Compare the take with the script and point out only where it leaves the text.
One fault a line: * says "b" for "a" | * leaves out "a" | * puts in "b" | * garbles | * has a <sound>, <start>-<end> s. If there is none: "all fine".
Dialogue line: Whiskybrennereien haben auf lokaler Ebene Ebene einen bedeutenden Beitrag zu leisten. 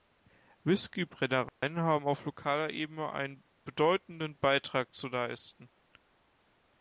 * has a dropout, 1.5-1.6 s
* leaves out "Ebene"